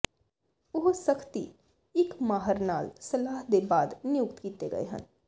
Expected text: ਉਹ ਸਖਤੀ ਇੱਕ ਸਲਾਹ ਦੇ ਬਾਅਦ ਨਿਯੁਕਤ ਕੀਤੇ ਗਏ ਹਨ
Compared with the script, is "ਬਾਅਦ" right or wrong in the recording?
right